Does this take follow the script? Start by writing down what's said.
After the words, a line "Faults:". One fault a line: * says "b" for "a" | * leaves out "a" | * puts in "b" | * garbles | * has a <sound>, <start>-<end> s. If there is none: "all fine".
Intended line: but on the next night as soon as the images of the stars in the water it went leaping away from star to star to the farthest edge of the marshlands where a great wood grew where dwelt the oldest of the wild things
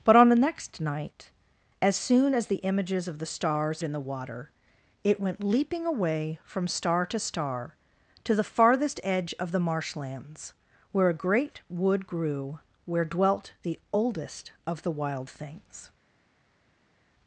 but on the next night as soon as the images of the stars in the water it went leaping away from star to star to the farthest edge of the marshlands where a great wood grew where dwelt the oldest of the wild things
Faults:
all fine